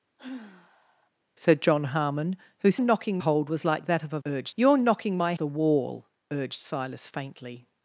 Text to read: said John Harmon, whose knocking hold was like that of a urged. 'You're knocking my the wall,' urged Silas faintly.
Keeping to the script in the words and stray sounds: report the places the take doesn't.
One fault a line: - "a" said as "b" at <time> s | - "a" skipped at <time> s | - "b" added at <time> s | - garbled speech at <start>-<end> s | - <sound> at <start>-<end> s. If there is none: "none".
- sigh at 0.2-1.1 s